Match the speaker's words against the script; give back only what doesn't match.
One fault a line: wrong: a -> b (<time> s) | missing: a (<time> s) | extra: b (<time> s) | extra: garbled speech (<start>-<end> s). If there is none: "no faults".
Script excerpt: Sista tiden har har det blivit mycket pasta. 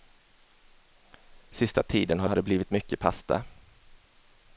no faults